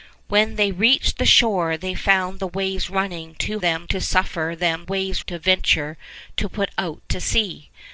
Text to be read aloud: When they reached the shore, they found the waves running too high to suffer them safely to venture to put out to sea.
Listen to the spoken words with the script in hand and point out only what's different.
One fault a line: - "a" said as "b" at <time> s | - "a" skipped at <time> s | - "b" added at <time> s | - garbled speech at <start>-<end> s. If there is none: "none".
- "high" said as "them" at 3.6 s
- "safely" said as "waves" at 4.8 s